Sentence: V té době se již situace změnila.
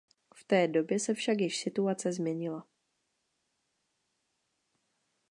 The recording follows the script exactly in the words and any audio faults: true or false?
false